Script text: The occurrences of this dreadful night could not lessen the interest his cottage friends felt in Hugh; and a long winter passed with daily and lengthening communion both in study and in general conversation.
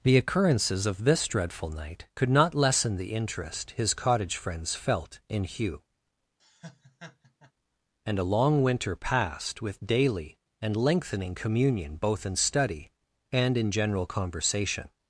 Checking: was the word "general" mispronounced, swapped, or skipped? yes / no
no